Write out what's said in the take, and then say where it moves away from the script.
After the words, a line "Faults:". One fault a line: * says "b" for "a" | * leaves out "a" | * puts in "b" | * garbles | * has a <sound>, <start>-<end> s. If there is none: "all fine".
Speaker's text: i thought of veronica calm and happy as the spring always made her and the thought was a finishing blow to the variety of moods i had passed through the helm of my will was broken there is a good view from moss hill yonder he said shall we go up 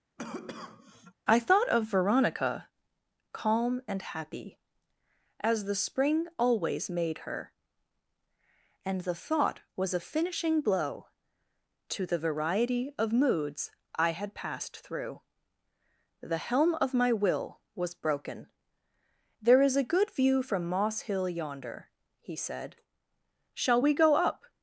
i thought of veronica calm and happy as the spring always made her and the thought was a finishing blow to the variety of moods i had passed through the helm of my will was broken there is a good view from moss hill yonder he said shall we go up
Faults:
* has a cough, 0.2-1.1 s